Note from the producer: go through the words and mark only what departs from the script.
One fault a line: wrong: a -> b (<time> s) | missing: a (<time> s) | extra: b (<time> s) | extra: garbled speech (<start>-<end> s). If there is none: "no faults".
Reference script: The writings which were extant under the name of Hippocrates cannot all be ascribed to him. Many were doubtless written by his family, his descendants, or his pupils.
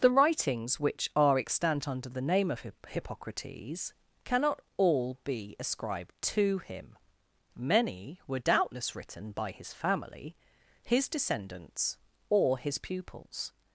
wrong: were -> are (1.1 s)